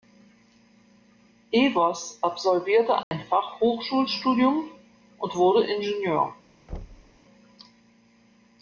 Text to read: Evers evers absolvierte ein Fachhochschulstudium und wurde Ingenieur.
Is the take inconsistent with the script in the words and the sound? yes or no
yes